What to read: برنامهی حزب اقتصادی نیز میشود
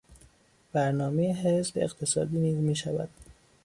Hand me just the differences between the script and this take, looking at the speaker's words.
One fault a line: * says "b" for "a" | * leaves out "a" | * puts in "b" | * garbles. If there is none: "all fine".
all fine